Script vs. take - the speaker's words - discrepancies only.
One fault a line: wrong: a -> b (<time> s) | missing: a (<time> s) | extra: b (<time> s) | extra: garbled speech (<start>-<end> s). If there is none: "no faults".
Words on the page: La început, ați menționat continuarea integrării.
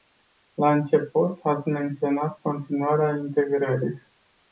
no faults